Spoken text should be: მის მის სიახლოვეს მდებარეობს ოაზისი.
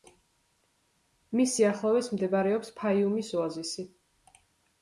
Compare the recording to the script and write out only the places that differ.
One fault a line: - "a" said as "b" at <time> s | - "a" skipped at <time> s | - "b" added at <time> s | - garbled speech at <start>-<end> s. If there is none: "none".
- "მის" skipped at 1.5 s
- "ფაიუმის" added at 2.8 s